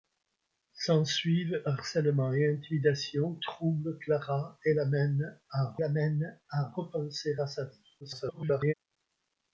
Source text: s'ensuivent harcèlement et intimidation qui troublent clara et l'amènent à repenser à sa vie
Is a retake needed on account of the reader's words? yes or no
yes